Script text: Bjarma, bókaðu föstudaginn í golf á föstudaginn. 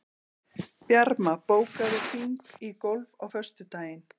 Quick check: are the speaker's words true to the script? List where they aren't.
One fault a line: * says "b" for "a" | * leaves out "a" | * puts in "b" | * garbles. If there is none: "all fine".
* says "hring" for "föstudaginn"